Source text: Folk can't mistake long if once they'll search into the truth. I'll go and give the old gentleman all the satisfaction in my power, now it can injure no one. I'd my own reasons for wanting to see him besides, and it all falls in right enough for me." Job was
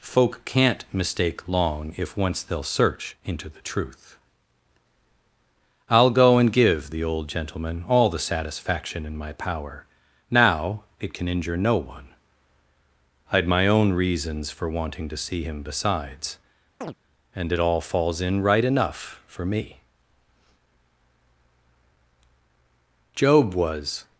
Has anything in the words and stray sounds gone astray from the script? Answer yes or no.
yes